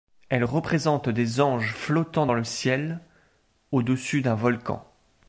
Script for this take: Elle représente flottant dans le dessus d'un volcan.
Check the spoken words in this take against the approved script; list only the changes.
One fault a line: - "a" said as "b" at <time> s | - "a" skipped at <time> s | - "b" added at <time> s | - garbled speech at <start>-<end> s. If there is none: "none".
- "des anges" added at 1.1 s
- "ciel au" added at 2.4 s